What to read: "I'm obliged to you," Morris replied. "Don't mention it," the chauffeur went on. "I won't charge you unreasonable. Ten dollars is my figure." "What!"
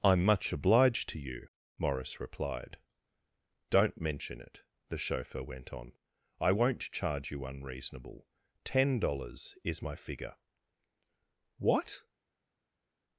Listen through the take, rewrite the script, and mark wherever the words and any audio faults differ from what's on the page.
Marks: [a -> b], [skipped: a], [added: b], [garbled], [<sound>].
"I'm [added: much] obliged to you," Morris replied. "Don't mention it," the chauffeur went on. "I won't charge you unreasonable. Ten dollars is my figure." "What!"